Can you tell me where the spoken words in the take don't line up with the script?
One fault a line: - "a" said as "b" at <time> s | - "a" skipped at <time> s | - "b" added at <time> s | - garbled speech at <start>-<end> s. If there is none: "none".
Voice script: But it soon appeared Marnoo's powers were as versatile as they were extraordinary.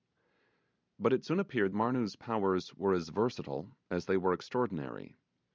none